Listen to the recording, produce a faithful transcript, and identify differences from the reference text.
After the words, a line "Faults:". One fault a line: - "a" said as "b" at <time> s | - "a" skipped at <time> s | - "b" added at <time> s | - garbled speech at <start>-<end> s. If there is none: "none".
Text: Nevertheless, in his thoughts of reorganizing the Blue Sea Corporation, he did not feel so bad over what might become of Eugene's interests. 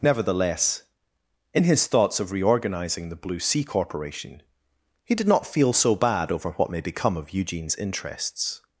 Nevertheless, in his thoughts of reorganizing the Blue Sea Corporation, he did not feel so bad over what may become of Eugene's interests.
Faults:
- "might" said as "may" at 6.7 s